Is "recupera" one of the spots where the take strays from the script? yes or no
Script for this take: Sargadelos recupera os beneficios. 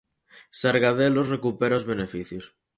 no